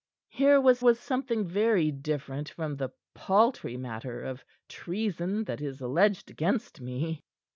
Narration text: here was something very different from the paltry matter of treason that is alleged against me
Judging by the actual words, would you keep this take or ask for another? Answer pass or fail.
fail